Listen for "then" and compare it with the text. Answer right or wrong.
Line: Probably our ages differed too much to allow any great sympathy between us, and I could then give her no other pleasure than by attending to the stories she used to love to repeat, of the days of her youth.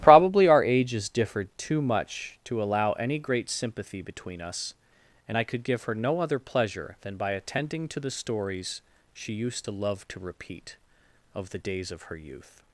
wrong